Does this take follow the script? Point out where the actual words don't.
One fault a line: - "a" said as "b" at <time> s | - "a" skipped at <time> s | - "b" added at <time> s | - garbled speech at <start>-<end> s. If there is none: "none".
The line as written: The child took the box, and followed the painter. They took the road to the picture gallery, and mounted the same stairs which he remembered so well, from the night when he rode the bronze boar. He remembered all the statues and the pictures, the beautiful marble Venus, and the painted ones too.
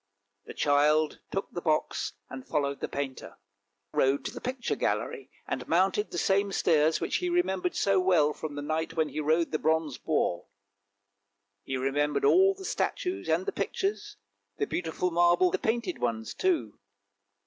- "They took the" skipped at 3.4 s
- "Venus and" skipped at 15.5 s